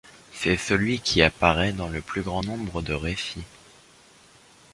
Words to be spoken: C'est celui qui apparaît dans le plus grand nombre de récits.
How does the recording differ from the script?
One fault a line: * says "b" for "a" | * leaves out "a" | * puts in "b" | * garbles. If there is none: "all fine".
all fine